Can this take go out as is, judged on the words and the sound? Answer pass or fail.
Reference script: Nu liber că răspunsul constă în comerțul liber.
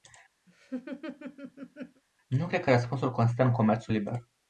fail